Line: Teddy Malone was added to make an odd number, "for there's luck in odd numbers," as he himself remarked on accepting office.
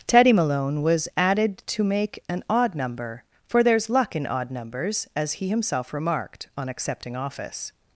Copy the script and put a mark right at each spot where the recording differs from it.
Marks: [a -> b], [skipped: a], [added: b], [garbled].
Teddy Malone was added to make an odd number, "for there's luck in odd numbers," as he himself remarked on accepting office.